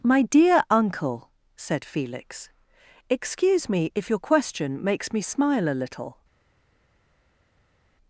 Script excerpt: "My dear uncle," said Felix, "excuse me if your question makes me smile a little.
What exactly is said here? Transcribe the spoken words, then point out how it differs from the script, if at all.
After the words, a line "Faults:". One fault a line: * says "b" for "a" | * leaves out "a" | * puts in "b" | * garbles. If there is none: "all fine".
"My dear uncle," said Felix, "excuse me if your question makes me smile a little.
Faults:
all fine